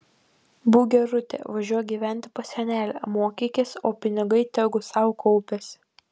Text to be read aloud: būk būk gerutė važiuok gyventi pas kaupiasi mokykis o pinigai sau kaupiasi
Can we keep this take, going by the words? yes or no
no